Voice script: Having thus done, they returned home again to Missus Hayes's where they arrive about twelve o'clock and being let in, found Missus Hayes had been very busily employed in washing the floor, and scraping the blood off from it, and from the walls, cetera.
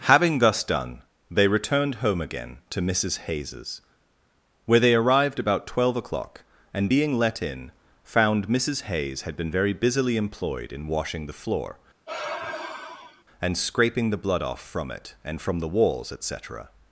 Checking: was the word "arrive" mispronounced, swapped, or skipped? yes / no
yes